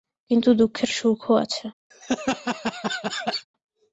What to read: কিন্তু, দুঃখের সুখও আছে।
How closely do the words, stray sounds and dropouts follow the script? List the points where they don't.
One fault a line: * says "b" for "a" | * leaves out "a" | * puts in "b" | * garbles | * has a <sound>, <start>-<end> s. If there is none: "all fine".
* has a laugh, 1.9-3.5 s